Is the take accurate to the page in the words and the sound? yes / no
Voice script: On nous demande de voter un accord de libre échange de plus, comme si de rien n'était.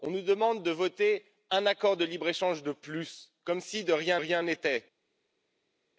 no